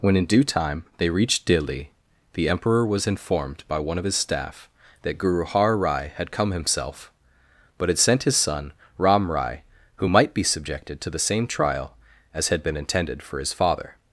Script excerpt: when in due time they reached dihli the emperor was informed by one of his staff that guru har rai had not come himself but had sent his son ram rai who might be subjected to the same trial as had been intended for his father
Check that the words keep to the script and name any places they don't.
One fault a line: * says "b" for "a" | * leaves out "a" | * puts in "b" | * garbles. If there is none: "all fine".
* leaves out "not"